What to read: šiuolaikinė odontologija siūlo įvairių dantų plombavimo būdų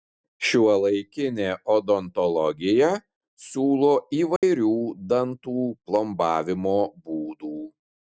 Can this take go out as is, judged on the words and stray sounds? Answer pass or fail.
fail